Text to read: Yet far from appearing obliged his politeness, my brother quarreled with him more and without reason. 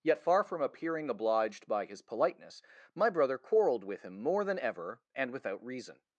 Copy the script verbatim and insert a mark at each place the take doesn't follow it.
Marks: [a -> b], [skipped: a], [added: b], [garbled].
Yet far from appearing obliged [added: by] his politeness, my brother quarreled with him more [added: than ever] and without reason.